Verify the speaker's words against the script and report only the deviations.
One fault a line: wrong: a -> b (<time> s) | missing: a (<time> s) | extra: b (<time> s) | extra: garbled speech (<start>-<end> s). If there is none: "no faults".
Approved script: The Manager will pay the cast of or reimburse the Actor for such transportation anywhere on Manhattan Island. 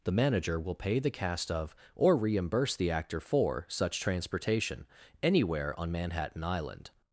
no faults